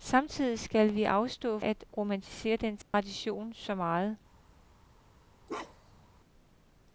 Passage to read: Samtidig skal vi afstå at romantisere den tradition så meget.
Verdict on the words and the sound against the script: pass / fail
fail